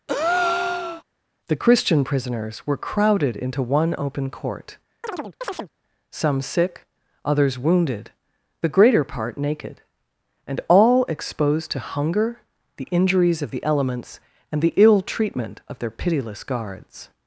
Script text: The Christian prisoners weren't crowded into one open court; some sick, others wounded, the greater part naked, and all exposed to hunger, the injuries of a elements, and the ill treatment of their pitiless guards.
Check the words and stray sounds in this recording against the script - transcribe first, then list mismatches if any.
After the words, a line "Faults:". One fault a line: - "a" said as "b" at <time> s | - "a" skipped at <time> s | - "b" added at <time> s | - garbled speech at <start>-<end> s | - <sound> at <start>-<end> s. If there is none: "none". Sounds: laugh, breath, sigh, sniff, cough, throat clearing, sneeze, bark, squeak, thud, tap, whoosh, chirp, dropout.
The Christian prisoners were crowded into one open court; some sick, others wounded, the greater part naked, and all exposed to hunger, the injuries of the elements, and the ill treatment of their pitiless guards.
Faults:
- breath at 0.1-1.0 s
- "weren't" said as "were" at 2.6 s
- chirp at 5.0-5.7 s
- "a" said as "the" at 13.5 s